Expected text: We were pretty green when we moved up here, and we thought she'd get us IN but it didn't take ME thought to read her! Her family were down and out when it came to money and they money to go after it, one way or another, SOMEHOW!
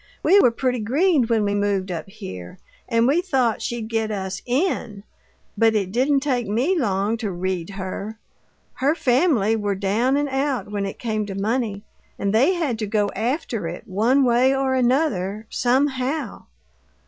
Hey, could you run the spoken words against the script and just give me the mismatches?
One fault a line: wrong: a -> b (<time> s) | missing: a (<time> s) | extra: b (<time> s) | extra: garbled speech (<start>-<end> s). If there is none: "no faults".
wrong: thought -> long (6.8 s)
wrong: money -> had (12.5 s)